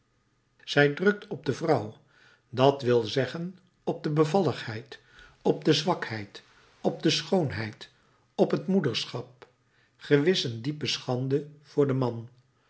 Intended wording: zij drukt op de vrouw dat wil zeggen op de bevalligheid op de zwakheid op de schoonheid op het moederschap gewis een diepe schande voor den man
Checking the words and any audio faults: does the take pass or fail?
pass